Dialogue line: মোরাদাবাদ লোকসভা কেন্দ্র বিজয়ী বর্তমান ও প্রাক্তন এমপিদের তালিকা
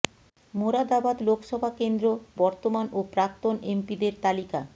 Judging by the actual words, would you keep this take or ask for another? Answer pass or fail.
fail